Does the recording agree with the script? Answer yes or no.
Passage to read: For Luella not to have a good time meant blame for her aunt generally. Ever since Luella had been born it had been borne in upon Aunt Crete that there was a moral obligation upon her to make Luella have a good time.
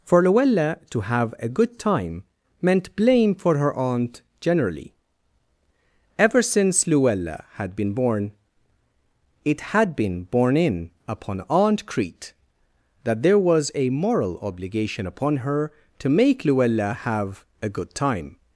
no